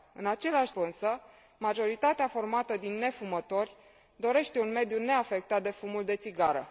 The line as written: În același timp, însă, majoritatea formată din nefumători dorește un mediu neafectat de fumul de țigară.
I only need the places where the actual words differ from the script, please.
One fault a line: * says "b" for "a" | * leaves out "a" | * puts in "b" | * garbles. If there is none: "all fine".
* leaves out "timp"